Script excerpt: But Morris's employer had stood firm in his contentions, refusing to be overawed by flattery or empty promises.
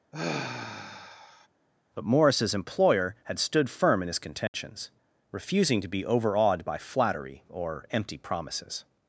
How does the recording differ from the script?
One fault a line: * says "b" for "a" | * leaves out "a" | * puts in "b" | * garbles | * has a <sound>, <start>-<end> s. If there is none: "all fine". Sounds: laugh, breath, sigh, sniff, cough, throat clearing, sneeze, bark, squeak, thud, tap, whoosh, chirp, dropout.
* has a sigh, 0.1-1.5 s
* has a dropout, 4.5-4.5 s